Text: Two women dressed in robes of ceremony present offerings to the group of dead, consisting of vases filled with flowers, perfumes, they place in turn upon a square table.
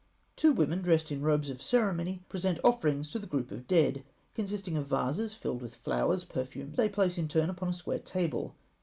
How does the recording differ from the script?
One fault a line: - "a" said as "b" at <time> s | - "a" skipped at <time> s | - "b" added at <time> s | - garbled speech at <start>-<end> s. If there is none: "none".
none